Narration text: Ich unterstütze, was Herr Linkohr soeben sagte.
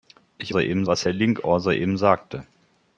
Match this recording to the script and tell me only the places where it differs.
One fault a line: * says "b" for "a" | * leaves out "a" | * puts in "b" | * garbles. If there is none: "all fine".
* says "soeben" for "unterstütze"